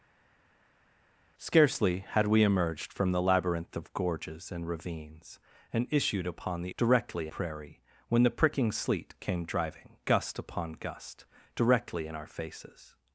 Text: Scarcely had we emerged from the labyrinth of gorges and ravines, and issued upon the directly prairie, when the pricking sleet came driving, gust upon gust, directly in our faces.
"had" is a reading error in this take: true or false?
false